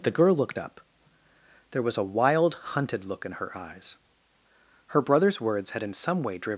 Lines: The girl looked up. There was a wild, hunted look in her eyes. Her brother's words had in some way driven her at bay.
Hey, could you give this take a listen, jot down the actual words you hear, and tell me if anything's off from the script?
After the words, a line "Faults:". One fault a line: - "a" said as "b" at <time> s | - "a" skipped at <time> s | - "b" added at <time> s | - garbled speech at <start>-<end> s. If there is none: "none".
The girl looked up. There was a wild, hunted look in her eyes. Her brother's words had in some way driven.
Faults:
- "her at bay" skipped at 6.5 s